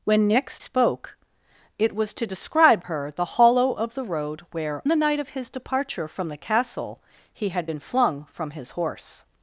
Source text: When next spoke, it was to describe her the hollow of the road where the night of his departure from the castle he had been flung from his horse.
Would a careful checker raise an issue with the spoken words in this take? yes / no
no